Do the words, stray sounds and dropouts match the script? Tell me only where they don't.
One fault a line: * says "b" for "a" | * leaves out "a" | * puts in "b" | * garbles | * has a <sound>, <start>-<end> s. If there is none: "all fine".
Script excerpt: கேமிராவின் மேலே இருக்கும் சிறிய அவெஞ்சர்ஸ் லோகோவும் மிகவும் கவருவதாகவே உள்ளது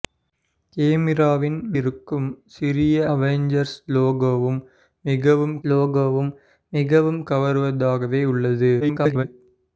* leaves out "மேலே"
* puts in "லோகோவும் மிகவும்"
* garbles